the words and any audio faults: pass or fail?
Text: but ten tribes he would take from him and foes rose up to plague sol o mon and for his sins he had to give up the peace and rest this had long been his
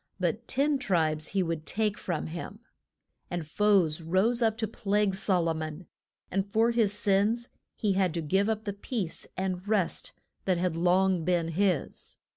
fail